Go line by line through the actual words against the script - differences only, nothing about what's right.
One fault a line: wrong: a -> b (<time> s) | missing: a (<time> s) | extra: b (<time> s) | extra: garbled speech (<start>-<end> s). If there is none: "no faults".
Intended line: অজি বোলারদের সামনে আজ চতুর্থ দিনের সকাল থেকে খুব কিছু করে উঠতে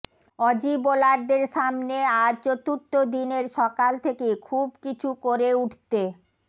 no faults